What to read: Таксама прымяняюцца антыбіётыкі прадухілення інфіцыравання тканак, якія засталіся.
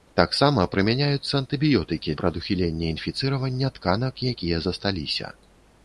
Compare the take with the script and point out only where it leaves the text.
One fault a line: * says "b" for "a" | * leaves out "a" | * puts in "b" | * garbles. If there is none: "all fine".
all fine